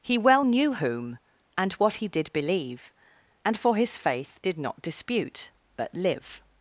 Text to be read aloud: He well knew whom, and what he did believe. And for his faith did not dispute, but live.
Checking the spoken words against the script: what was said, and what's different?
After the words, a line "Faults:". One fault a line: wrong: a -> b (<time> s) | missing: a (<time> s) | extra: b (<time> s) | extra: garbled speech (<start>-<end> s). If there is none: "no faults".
He well knew whom, and what he did believe. And for his faith did not dispute, but live.
Faults:
no faults